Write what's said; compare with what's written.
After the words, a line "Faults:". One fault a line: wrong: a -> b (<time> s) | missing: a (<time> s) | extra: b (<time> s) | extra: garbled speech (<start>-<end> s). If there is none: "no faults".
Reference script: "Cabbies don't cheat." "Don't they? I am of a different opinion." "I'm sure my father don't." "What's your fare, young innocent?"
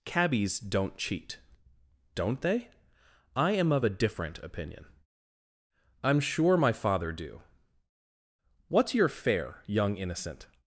"Cabbies don't cheat." "Don't they? I am of a different opinion." "I'm sure my father do." "What's your fare, young innocent?"
Faults:
wrong: don't -> do (7.1 s)